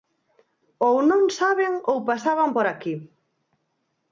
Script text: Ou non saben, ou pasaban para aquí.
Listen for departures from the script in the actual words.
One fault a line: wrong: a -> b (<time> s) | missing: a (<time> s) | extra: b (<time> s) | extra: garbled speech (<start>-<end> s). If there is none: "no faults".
wrong: para -> por (2.6 s)